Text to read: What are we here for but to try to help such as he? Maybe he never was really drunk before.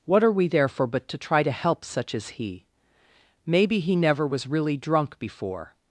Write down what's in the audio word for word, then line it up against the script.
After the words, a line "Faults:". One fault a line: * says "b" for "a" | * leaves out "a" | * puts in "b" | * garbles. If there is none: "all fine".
What are we there for but to try to help such as he? Maybe he never was really drunk before.
Faults:
* says "there" for "here"